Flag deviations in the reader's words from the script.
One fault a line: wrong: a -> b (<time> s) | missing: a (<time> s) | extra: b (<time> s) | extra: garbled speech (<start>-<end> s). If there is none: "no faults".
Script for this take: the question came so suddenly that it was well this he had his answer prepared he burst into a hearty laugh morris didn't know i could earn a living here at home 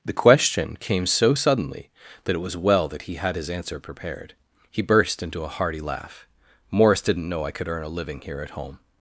wrong: this -> that (2.9 s)